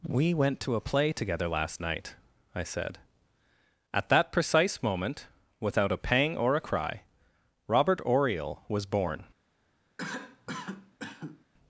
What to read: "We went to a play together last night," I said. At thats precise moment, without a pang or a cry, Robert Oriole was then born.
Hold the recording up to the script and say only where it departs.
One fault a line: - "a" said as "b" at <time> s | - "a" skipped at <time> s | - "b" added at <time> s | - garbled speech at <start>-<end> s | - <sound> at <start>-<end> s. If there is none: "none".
- "thats" said as "that" at 4.1 s
- "then" skipped at 8.8 s
- cough at 10.0-11.5 s